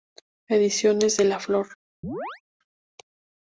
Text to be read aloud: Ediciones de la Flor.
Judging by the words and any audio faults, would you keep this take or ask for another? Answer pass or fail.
fail